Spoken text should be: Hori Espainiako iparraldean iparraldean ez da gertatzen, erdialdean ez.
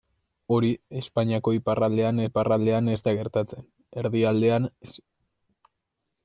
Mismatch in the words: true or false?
false